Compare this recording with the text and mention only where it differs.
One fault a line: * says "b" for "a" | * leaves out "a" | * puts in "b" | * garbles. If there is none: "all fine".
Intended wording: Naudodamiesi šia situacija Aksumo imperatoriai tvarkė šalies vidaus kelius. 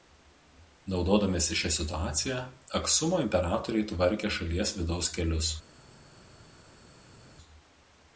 all fine